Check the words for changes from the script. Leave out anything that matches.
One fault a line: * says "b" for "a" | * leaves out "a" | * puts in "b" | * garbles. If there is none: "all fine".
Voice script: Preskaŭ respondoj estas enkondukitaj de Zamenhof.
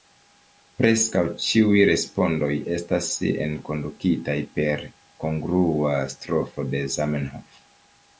* puts in "ĉiuj"
* puts in "per kongrua strofo"